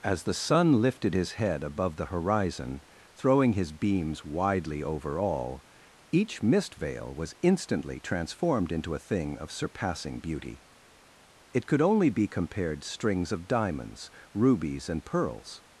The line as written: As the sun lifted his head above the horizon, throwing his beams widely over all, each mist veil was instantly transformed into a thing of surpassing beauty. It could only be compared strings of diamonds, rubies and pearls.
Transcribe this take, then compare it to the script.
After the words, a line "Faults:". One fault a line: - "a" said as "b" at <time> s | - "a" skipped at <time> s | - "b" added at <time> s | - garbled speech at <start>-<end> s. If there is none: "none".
As the sun lifted his head above the horizon, throwing his beams widely over all, each mist veil was instantly transformed into a thing of surpassing beauty. It could only be compared strings of diamonds, rubies and pearls.
Faults:
none